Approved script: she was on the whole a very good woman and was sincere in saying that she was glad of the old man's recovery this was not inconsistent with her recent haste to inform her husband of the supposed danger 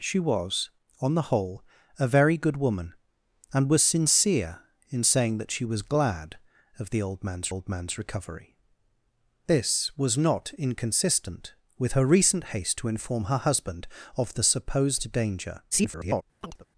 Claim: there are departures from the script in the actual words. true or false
true